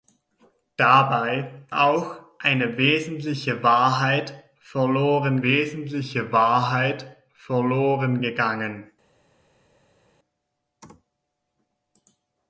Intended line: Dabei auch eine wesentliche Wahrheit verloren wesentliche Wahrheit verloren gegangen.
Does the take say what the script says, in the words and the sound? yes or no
yes